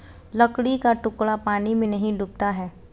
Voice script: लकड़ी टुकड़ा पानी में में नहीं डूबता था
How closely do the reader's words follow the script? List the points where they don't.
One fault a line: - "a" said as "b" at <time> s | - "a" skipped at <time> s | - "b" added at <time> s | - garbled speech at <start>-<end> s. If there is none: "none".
- "का" added at 0.8 s
- "में" skipped at 1.9 s
- "था" said as "है" at 2.5 s